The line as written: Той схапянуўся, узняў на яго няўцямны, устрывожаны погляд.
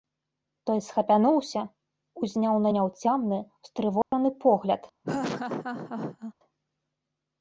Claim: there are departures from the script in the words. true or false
true